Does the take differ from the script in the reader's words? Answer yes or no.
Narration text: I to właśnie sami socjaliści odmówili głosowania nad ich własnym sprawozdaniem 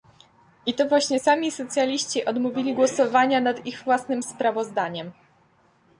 no